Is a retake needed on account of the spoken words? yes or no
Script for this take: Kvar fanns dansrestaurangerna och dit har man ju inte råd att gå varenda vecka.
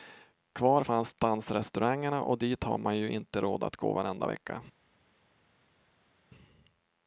no